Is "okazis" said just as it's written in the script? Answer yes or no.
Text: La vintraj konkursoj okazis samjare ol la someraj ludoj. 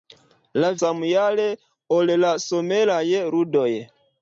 no